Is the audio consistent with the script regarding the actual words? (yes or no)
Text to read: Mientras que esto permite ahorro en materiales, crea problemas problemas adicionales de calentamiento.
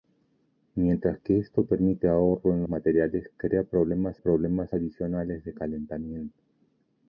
yes